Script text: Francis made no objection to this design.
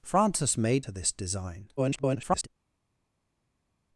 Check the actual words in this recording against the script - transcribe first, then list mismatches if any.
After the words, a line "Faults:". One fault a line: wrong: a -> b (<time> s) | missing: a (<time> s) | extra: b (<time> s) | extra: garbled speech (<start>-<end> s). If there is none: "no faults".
Francis made to this design. [garbled]
Faults:
missing: no objection (0.9 s)
extra: garbled speech (1.8-2.5 s)